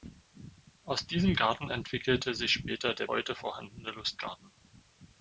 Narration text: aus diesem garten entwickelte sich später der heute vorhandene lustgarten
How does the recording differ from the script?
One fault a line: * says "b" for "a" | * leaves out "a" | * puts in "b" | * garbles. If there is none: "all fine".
all fine